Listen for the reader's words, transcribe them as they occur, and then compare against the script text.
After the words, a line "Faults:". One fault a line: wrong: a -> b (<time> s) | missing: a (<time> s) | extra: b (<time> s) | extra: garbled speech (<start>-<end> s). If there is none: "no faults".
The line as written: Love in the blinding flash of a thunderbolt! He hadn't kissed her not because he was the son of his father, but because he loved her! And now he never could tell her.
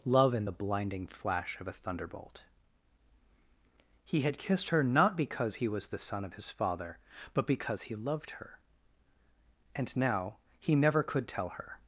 Love in the blinding flash of a thunderbolt! He had kissed her not because he was the son of his father, but because he loved her! And now he never could tell her.
Faults:
wrong: hadn't -> had (4.2 s)